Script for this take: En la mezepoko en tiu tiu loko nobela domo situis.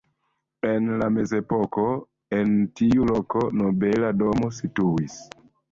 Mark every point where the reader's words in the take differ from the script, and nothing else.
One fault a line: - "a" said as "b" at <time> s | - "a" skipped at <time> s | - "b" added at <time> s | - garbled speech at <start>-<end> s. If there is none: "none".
- "tiu" skipped at 3.1 s